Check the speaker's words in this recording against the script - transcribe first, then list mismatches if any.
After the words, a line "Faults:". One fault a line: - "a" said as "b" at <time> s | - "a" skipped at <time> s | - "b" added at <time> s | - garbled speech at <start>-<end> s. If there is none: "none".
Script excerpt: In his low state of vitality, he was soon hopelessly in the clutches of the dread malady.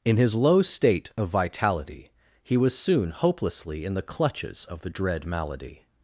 In his low state of vitality, he was soon hopelessly in the clutches of the dread malady.
Faults:
none